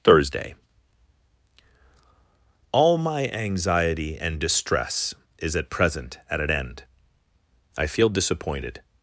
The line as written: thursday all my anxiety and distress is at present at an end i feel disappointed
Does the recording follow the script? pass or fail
pass